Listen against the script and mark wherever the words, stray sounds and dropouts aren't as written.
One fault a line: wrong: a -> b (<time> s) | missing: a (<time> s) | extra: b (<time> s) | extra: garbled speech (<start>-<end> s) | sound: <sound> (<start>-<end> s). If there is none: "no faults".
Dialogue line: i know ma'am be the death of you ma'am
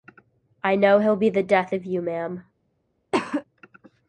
wrong: ma'am -> he'll (1.0 s)
sound: cough (3.1-3.4 s)